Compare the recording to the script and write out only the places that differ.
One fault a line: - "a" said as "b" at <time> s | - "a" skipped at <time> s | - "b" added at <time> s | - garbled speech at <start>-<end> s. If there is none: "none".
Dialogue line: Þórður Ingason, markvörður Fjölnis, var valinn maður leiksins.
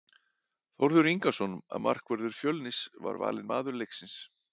none